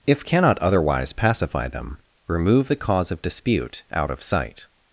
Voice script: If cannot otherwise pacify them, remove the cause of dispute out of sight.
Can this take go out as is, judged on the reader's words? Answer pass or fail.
pass